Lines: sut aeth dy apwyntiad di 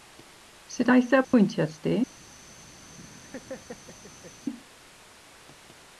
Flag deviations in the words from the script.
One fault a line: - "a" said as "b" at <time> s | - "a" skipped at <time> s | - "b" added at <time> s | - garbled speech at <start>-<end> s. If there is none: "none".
none